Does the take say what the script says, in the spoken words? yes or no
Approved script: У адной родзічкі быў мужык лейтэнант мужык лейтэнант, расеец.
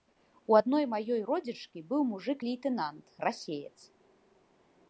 no